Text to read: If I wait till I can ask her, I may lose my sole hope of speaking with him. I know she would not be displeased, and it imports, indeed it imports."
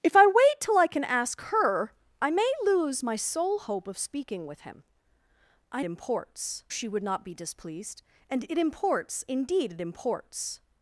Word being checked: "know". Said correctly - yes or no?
no